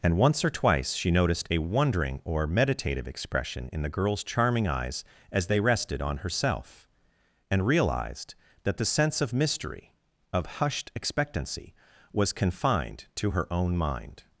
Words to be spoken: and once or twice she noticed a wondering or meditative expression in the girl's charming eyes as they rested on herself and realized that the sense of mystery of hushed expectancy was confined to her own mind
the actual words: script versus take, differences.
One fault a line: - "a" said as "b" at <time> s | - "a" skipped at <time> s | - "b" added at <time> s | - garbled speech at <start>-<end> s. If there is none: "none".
none